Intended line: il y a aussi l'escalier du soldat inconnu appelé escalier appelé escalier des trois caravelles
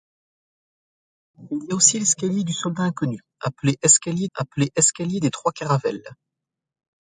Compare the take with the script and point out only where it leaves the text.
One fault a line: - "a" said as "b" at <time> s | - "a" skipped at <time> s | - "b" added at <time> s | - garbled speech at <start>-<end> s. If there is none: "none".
none